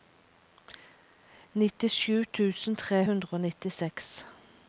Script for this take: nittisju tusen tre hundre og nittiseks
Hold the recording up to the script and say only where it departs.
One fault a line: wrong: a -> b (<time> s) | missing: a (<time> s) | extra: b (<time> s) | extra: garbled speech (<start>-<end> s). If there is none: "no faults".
no faults